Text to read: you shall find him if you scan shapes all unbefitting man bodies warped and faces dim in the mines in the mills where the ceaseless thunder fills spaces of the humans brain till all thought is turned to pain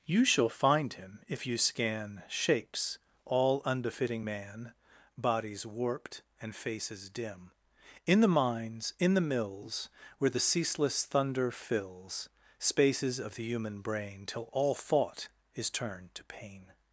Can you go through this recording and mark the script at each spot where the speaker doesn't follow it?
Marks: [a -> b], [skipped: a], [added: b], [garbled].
you shall find him if you scan shapes all unbefitting man bodies warped and faces dim in the mines in the mills where the ceaseless thunder fills spaces of the [humans -> human] brain till all thought is turned to pain